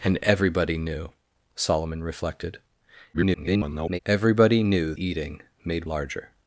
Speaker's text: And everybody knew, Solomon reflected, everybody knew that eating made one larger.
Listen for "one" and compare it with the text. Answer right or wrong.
wrong